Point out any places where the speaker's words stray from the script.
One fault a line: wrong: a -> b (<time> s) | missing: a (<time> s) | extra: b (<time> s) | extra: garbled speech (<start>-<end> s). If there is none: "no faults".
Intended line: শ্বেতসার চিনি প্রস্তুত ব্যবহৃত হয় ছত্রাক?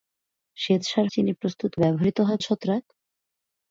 no faults